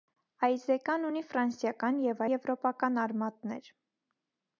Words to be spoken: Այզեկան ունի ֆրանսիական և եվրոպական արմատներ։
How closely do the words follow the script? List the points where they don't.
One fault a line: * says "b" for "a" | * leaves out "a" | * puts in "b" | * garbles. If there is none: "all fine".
all fine